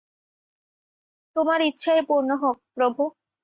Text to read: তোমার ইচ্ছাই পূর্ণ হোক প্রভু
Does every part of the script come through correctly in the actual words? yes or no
yes